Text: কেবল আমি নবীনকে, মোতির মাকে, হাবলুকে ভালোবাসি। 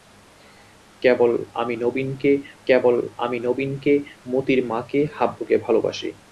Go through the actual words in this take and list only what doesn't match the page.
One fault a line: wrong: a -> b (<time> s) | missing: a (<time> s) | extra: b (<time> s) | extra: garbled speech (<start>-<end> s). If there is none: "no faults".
extra: কেবল আমি নবীনকে (2.7 s)